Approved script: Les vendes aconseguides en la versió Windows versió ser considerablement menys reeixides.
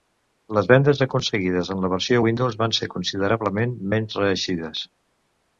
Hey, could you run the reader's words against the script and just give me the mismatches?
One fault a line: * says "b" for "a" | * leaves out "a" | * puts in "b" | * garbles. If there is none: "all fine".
* says "van" for "versió"